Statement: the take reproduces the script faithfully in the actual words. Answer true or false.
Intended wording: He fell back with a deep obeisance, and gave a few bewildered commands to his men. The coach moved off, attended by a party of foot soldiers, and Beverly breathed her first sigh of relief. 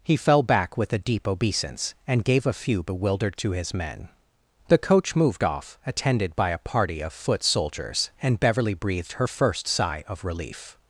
false